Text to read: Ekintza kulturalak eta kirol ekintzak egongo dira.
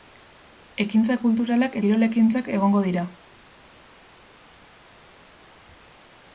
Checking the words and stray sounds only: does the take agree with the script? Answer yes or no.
no